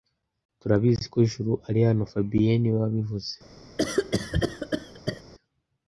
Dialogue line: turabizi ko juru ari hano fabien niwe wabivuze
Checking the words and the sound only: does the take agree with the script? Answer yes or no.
no